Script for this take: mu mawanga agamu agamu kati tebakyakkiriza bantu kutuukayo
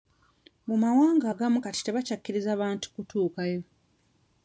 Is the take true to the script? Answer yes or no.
no